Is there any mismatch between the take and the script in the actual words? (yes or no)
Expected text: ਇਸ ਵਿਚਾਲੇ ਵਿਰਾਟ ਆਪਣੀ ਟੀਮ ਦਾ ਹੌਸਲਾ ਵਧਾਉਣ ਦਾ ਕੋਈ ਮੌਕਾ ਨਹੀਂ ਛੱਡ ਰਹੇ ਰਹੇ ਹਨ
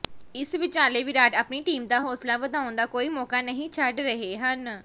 yes